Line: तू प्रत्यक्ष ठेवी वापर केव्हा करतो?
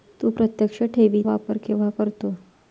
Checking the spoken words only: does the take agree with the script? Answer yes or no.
yes